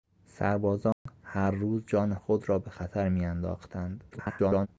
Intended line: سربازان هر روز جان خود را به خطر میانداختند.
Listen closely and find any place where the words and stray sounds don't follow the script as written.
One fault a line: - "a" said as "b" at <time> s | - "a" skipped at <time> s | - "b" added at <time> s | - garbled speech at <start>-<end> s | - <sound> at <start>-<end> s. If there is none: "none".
- dropout at 0.9-1.1 s
- garbled speech at 4.1-4.7 s